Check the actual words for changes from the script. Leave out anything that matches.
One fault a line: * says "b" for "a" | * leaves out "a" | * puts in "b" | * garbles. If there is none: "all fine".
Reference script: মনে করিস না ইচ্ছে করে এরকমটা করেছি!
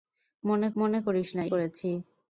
* puts in "মনে"
* leaves out "ইচ্ছে করে এরকমটা"